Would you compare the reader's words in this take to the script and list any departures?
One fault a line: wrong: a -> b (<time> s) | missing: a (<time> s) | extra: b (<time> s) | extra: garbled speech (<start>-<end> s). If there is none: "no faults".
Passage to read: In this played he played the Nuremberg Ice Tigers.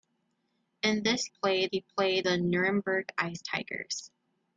no faults